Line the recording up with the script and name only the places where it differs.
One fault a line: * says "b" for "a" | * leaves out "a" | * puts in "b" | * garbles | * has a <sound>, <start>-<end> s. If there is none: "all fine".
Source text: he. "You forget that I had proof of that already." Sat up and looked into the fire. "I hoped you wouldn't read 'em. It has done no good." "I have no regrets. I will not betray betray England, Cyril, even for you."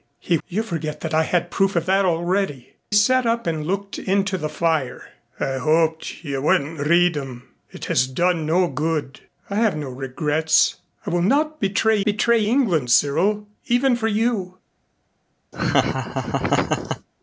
* has a laugh, 15.5-17.1 s